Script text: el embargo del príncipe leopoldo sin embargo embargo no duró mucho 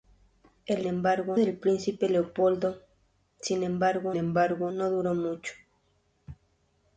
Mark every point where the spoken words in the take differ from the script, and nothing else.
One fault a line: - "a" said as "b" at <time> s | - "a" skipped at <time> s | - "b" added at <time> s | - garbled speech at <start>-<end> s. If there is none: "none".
none